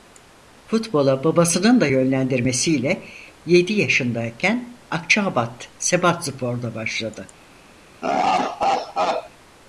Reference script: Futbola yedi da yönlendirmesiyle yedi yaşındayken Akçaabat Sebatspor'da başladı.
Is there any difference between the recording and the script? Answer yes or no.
yes